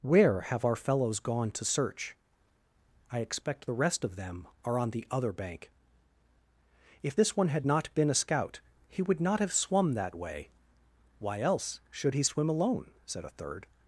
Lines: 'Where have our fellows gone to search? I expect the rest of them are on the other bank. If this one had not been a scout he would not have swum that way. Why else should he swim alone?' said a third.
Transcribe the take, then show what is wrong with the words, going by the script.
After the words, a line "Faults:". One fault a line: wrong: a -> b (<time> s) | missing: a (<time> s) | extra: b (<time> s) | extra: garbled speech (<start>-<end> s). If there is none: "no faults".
'Where have our fellows gone to search? I expect the rest of them are on the other bank. If this one had not been a scout he would not have swum that way. Why else should he swim alone?' said a third.
Faults:
no faults